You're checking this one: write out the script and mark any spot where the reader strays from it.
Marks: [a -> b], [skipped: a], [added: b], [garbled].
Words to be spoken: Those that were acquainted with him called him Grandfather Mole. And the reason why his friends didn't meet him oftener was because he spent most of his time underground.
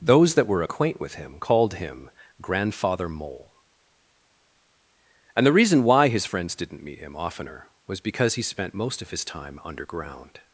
Those that were [acquainted -> acquaint] with him called him Grandfather Mole. And the reason why his friends didn't meet him oftener was because he spent most of his time underground.